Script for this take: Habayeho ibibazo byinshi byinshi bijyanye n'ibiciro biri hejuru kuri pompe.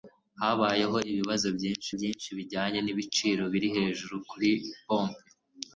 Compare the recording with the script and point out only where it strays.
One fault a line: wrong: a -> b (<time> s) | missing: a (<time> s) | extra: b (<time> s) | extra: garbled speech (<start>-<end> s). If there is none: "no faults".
no faults